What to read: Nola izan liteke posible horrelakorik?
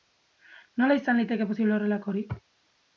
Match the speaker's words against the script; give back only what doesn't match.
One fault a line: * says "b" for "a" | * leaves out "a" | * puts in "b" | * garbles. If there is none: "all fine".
all fine